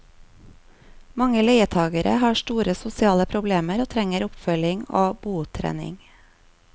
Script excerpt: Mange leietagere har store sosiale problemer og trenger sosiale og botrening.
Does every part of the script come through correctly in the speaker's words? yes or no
no